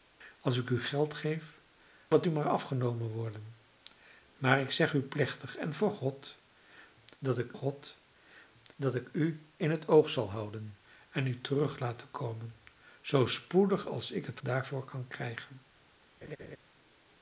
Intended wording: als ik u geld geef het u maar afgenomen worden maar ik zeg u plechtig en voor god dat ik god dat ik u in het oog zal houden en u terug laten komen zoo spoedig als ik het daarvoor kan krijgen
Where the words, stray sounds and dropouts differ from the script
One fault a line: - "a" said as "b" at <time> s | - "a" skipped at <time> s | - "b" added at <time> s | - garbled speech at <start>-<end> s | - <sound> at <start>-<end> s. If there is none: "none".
- laugh at 16.2-16.6 s